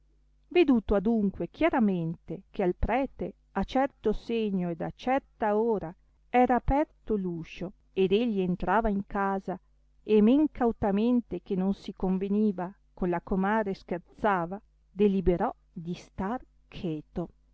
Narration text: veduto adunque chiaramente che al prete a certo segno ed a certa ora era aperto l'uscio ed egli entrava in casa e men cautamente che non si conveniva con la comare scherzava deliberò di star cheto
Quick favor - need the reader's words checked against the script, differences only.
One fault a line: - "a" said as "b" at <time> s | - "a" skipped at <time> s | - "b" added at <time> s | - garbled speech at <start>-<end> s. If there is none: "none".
none